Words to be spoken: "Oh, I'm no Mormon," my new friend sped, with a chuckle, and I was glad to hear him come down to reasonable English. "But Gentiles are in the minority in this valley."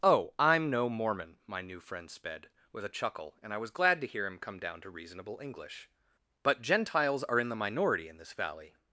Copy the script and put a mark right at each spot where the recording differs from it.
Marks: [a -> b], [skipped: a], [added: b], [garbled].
"Oh, I'm no Mormon," my new friend sped, with a chuckle, and I was glad to hear him come down to reasonable English. "But Gentiles are in the minority in this valley."